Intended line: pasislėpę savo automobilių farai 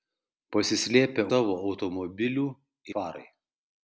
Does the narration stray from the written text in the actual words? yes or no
no